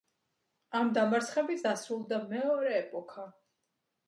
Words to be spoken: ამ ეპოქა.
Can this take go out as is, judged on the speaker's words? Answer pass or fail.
fail